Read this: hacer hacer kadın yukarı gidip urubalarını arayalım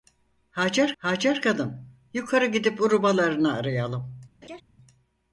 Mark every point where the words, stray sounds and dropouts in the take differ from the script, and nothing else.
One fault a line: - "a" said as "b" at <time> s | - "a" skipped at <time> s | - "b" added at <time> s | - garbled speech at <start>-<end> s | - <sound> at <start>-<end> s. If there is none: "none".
- laugh at 4.4-4.6 s